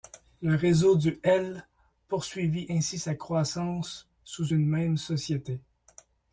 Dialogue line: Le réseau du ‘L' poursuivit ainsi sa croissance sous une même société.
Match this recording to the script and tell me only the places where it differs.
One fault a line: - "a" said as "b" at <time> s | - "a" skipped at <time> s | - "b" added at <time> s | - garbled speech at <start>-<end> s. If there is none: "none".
none